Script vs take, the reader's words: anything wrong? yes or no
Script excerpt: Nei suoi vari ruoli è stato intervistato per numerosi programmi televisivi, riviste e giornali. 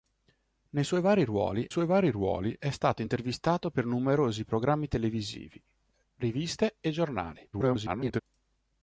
yes